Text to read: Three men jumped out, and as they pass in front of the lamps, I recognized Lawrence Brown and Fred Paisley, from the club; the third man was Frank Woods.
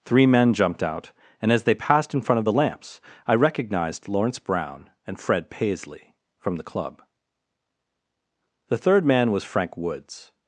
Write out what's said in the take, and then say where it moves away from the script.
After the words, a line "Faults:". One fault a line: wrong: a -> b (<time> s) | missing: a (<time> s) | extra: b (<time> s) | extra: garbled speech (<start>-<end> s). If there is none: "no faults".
Three men jumped out, and as they passed in front of the lamps, I recognized Lawrence Brown and Fred Paisley, from the club; the third man was Frank Woods.
Faults:
wrong: pass -> passed (1.8 s)